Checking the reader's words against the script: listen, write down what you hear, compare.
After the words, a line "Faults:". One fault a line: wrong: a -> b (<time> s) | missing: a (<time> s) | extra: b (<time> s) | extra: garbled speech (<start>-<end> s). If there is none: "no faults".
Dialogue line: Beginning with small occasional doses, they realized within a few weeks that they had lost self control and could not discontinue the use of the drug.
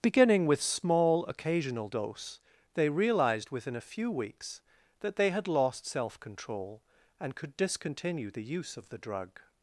Beginning with small occasional dose, they realized within a few weeks that they had lost self control and could discontinue the use of the drug.
Faults:
wrong: doses -> dose (1.8 s)
missing: not (7.6 s)